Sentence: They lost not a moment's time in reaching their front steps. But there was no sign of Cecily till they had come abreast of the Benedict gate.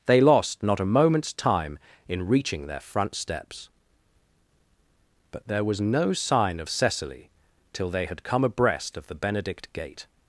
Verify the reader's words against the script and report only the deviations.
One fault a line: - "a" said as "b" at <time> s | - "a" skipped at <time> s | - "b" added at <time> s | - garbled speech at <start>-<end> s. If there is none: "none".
none